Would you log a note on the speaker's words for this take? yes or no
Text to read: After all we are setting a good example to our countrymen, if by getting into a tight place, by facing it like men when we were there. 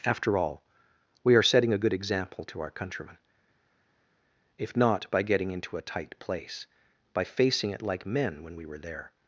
yes